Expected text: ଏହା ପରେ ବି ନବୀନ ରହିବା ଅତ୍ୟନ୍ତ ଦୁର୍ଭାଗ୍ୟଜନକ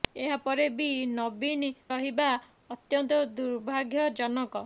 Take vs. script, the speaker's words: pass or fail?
pass